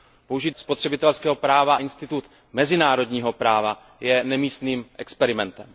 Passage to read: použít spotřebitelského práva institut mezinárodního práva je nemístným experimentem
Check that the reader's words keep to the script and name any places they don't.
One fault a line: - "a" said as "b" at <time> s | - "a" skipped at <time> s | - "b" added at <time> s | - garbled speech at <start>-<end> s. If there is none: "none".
none